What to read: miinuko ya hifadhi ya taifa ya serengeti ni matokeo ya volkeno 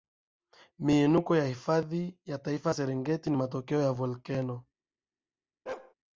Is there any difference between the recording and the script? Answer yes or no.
no